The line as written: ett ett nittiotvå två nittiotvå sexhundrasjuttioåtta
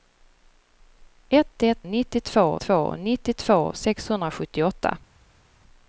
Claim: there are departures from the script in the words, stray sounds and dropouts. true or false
false